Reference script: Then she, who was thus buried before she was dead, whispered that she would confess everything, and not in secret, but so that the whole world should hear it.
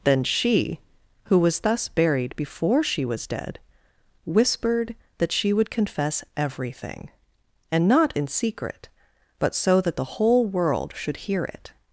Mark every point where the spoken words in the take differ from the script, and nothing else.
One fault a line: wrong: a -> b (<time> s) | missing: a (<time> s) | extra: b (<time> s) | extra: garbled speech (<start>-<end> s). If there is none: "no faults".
no faults